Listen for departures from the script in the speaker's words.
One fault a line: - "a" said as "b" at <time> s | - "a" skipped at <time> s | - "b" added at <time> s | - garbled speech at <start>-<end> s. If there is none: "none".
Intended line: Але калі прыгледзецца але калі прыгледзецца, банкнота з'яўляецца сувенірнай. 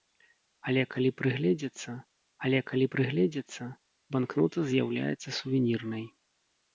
none